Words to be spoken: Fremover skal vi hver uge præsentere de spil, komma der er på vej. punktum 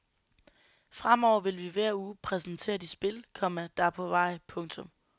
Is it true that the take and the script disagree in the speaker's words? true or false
true